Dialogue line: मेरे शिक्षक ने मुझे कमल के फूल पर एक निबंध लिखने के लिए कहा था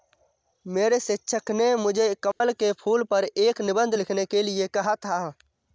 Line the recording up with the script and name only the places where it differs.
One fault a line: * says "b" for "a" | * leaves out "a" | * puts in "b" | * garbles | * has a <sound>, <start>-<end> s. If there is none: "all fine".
* has a dropout, 2.3-2.4 s